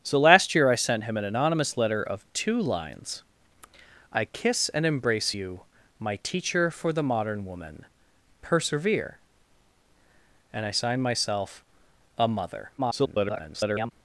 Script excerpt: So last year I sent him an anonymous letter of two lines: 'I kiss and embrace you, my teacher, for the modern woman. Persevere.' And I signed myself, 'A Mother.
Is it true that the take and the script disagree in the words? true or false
true